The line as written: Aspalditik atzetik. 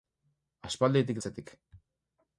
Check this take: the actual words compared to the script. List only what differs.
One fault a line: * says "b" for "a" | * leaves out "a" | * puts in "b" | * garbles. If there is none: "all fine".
all fine